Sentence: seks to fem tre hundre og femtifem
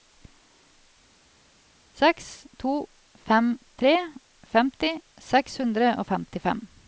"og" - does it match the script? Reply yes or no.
yes